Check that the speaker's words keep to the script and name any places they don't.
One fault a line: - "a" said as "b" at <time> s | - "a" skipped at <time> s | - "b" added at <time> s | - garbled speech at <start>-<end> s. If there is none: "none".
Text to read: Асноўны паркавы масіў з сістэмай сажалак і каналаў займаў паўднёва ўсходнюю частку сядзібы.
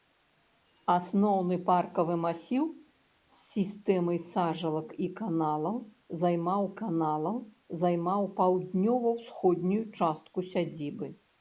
- "каналаў займаў" added at 6.8 s